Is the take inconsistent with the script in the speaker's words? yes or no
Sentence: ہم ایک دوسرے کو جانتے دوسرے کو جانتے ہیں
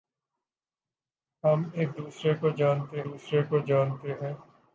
no